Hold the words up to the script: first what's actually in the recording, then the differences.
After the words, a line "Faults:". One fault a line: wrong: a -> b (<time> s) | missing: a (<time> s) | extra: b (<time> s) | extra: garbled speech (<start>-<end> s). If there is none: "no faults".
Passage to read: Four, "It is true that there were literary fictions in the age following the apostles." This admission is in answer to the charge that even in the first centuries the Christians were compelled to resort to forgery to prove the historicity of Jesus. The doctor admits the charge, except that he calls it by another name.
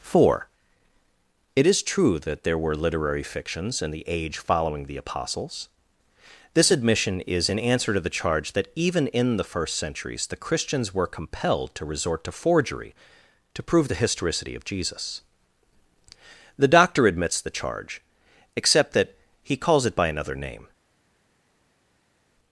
Four, "It is true that there were literary fictions in the age following the apostles." This admission is in answer to the charge that even in the first centuries the Christians were compelled to resort to forgery to prove the historicity of Jesus. The doctor admits the charge, except that he calls it by another name.
Faults:
no faults